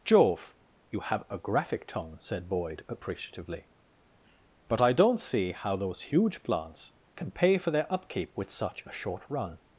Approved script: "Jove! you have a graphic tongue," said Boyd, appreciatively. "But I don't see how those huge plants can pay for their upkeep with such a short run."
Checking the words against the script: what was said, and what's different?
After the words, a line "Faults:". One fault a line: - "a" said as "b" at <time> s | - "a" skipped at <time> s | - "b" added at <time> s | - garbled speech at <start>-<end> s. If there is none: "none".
"Jove! you have a graphic tongue," said Boyd, appreciatively. "But I don't see how those huge plants can pay for their upkeep with such a short run."
Faults:
none